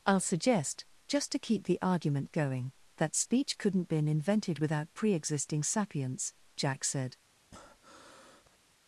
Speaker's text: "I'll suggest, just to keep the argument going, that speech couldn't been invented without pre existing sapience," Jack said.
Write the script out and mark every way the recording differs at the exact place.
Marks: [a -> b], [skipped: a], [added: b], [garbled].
"I'll suggest, just to keep the argument going, that speech couldn't been invented without pre existing sapience," Jack said.